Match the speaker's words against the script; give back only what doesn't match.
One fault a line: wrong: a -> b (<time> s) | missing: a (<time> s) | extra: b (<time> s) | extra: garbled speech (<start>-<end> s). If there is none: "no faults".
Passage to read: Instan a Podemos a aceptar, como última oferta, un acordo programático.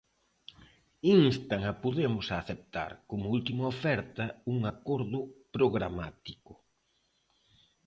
no faults